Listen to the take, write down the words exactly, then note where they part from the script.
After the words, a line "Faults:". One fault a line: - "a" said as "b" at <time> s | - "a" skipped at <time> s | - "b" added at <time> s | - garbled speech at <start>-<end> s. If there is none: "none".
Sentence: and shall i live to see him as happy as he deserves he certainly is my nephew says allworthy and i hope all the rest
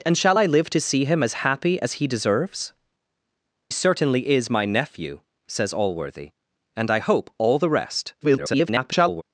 and shall i live to see him as happy as he deserves certainly is my nephew says allworthy and i hope all the rest [garbled]
Faults:
- "he" skipped at 2.7 s
- garbled speech at 8.2-9.2 s